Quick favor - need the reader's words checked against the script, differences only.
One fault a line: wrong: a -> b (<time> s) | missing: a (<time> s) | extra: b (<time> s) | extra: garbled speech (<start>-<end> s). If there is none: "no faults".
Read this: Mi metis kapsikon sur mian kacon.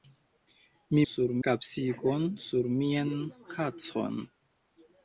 wrong: metis -> sur (1.1 s)